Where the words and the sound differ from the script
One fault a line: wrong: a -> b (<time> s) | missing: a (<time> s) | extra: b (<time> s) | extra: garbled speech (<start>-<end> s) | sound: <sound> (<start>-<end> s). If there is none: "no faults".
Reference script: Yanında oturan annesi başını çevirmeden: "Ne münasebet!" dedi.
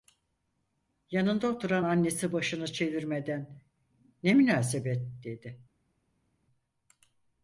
no faults